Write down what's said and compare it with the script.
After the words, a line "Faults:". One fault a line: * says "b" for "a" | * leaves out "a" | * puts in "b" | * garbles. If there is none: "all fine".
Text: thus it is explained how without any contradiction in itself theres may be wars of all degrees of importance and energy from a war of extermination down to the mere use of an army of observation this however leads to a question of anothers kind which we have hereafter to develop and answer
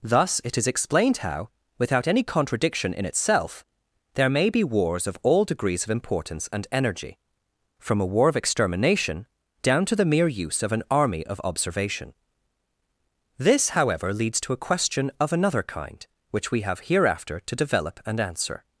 thus it is explained how without any contradiction in itself there may be wars of all degrees of importance and energy from a war of extermination down to the mere use of an army of observation this however leads to a question of another kind which we have hereafter to develop and answer
Faults:
* says "there" for "theres"
* says "another" for "anothers"